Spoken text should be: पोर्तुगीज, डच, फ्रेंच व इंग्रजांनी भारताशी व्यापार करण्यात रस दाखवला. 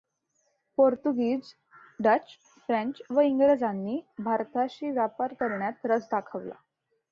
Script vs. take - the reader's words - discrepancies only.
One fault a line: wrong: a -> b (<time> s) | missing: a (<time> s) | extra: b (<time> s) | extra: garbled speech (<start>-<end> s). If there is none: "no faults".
no faults